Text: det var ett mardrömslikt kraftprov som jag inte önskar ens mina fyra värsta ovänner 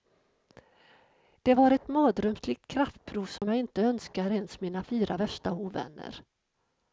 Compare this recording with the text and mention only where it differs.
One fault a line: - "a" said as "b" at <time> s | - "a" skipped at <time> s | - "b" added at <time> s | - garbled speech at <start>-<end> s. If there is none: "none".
none